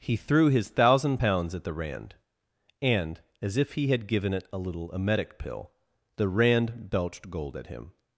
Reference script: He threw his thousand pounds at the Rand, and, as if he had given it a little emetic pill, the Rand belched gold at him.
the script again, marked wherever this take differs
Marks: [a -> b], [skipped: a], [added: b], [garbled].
He threw his thousand pounds at the Rand, and, as if he had given it a little emetic pill, the Rand belched gold at him.